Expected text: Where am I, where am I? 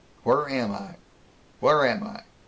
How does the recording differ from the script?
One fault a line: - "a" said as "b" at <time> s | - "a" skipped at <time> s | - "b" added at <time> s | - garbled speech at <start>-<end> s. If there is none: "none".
none